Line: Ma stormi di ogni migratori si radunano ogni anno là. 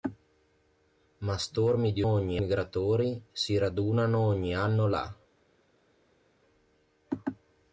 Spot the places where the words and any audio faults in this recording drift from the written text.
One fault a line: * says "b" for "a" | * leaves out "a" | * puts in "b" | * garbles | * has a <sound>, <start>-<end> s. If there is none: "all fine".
all fine